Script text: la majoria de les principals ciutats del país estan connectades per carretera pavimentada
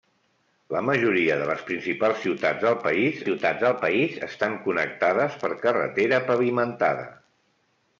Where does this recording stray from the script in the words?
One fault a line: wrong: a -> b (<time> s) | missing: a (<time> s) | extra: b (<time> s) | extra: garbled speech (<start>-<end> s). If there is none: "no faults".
extra: ciutats del país (3.2 s)